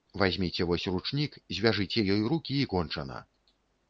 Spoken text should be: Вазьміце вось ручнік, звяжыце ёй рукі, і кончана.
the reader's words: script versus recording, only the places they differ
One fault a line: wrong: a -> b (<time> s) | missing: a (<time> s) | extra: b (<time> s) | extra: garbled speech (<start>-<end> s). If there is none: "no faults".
no faults